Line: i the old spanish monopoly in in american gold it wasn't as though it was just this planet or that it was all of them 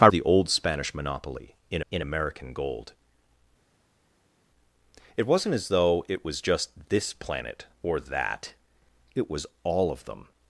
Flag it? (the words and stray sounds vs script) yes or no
no